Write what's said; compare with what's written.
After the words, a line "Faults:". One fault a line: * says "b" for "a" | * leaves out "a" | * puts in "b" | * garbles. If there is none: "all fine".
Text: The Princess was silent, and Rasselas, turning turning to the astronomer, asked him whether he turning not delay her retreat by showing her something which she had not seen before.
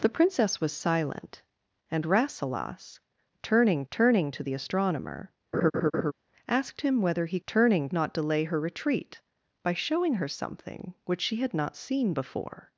The Princess was silent, and Rasselas, turning turning to the astronomer, asked him whether he turning not delay her retreat by showing her something which she had not seen before.
Faults:
all fine